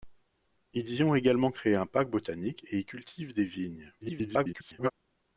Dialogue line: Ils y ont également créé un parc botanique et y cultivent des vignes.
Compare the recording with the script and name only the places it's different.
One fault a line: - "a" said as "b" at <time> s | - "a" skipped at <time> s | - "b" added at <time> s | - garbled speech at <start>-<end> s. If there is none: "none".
- garbled speech at 4.0-4.9 s